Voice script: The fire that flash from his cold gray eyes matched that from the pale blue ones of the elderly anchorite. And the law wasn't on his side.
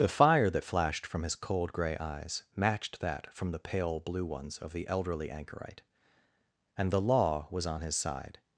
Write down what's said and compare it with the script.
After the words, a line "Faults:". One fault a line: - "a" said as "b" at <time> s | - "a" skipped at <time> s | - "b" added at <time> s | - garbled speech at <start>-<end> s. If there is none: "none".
The fire that flashed from his cold gray eyes matched that from the pale blue ones of the elderly anchorite. And the law was on his side.
Faults:
- "flash" said as "flashed" at 0.6 s
- "wasn't" said as "was" at 7.5 s